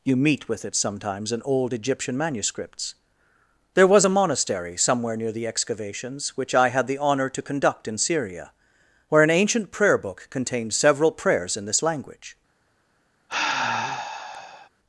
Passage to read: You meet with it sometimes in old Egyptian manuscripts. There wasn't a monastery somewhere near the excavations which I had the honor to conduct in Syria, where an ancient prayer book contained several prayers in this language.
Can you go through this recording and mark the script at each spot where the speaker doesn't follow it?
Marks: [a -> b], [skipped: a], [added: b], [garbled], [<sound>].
You meet with it sometimes in old Egyptian manuscripts. There [wasn't -> was] a monastery somewhere near the excavations which I had the honor to conduct in Syria, where an ancient prayer book contained several prayers in this language. [sigh]